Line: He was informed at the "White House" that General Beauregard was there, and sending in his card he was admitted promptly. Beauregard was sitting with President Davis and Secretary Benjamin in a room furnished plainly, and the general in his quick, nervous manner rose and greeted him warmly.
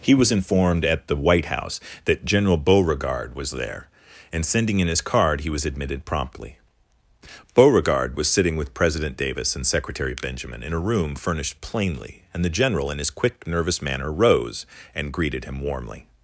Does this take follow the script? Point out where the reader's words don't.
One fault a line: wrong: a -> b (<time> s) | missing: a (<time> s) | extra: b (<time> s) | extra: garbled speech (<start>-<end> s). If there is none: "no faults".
no faults